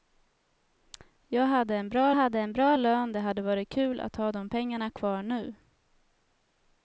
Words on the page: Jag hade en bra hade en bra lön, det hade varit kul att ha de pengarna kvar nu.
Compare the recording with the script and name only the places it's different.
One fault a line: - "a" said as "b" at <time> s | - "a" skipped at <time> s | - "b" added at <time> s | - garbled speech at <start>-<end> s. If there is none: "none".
none